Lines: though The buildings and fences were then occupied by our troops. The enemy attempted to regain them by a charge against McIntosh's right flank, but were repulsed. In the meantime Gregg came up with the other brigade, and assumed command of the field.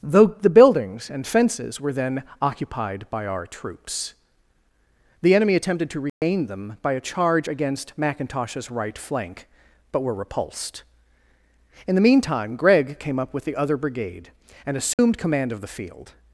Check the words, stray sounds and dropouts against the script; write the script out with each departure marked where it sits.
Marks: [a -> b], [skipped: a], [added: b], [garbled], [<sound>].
though The buildings and fences were then occupied by our troops. The enemy attempted to regain [dropout] them by a charge against McIntosh's right flank, but were repulsed. In the meantime Gregg came up with the other brigade, and assumed [dropout] command of the field.